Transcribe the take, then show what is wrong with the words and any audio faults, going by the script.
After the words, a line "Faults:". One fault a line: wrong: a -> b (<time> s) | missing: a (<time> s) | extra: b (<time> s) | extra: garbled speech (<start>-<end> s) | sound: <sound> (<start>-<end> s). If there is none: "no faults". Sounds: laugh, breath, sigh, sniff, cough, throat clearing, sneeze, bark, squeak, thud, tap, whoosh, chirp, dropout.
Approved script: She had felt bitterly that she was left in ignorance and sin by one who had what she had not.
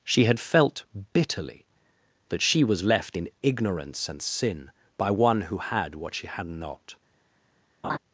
She had felt bitterly that she was left in ignorance and sin by one who had what she had not.
Faults:
sound: laugh (7.8-8.0 s)